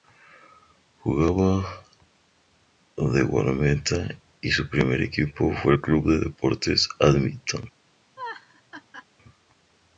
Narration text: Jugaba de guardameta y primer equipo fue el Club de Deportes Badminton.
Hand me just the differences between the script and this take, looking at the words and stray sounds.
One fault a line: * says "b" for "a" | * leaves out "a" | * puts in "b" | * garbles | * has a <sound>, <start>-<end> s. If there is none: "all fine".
* puts in "su"
* has a laugh, 8.2-9.1 s